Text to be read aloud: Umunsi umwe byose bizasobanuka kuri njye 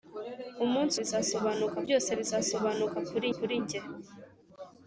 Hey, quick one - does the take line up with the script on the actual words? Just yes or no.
no